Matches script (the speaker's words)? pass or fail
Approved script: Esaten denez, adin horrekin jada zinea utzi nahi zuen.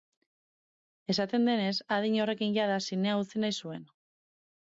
pass